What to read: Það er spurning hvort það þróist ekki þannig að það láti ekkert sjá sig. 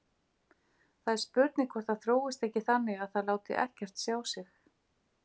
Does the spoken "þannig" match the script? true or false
true